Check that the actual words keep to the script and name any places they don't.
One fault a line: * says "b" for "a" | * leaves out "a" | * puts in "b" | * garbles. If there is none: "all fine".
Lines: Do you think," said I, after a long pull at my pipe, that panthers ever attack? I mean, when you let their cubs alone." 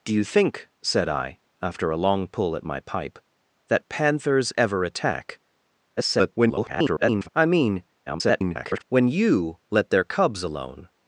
* garbles
* garbles